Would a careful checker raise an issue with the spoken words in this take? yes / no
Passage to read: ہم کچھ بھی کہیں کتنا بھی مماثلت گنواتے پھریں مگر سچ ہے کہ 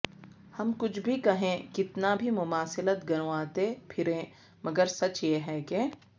yes